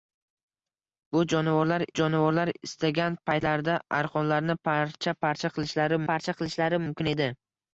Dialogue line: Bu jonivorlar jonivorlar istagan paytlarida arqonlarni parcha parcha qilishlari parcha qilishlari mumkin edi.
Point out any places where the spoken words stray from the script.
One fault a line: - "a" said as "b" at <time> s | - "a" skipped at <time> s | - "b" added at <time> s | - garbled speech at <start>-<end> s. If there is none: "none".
none